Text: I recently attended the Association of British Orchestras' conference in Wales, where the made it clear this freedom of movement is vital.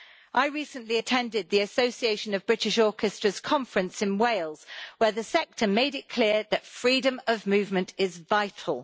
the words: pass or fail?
fail